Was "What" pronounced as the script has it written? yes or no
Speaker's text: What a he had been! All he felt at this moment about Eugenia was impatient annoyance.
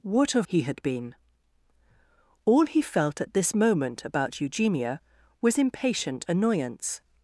yes